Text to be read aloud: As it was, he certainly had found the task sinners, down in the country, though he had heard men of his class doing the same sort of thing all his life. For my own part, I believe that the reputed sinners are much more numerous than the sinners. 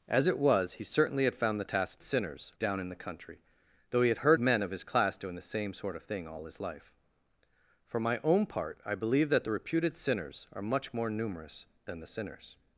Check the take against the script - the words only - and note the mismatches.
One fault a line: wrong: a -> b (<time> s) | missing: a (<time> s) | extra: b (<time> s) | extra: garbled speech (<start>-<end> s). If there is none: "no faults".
no faults